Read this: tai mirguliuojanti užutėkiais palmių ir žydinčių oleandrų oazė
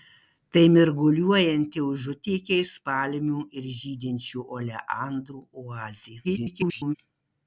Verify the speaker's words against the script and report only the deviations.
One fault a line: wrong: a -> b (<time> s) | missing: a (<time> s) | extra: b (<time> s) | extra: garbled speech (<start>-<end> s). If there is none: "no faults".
extra: garbled speech (6.2-7.0 s)